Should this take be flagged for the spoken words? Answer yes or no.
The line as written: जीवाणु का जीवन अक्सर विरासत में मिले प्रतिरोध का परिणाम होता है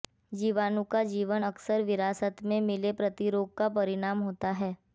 no